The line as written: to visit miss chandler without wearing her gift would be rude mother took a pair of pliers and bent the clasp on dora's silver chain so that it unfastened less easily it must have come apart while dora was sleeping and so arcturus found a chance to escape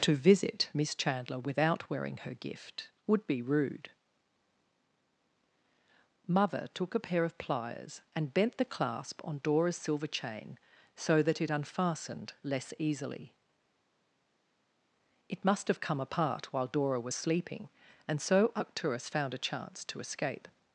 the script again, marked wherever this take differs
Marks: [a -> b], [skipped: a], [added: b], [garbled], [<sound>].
to visit miss chandler without wearing her gift would be rude mother took a pair of pliers and bent the clasp on dora's silver chain so that it unfastened less easily it must have come apart while dora was sleeping and so arcturus found a chance to escape